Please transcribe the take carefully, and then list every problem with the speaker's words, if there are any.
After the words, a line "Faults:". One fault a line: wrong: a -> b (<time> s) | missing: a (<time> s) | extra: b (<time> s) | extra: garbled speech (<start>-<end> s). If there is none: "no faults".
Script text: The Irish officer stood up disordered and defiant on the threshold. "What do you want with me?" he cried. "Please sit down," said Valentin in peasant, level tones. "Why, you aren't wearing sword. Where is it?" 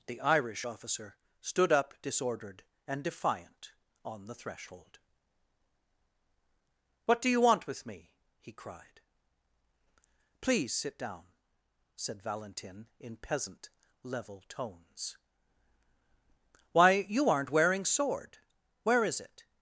The Irish officer stood up disordered and defiant on the threshold. "What do you want with me?" he cried. "Please sit down," said Valentin in peasant, level tones. "Why, you aren't wearing sword. Where is it?"
Faults:
no faults